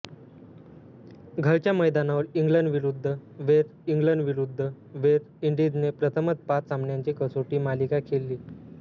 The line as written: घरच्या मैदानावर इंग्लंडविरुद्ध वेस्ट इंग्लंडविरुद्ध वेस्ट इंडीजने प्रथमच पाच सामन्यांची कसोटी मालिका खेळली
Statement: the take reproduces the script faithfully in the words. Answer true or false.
true